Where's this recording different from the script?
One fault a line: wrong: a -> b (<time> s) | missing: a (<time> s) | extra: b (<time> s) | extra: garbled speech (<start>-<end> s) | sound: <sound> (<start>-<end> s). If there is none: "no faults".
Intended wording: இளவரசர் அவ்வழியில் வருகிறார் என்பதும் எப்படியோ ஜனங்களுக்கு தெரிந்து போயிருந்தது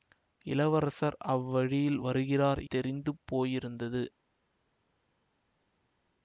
missing: என்பதும் எப்படியோ ஜனங்களுக்கு (2.6 s)